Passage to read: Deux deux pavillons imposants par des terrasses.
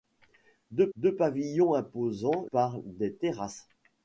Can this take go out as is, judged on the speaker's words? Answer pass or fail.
pass